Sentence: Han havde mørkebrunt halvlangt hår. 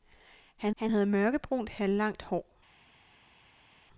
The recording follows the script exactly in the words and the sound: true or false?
false